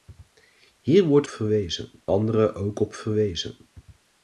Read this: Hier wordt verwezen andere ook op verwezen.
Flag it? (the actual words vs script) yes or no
no